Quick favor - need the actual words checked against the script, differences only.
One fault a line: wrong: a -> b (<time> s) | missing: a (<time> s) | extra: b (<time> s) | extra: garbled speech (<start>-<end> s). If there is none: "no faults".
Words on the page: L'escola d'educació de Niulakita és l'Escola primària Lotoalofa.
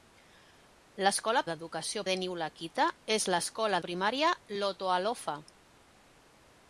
no faults